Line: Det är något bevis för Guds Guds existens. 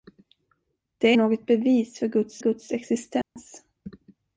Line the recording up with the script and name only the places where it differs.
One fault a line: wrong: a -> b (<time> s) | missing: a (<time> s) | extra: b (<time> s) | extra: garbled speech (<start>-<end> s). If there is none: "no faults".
no faults